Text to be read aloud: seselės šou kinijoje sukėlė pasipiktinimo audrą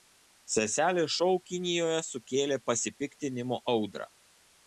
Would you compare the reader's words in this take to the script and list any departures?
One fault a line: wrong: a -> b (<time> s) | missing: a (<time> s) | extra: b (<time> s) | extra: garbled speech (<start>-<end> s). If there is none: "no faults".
no faults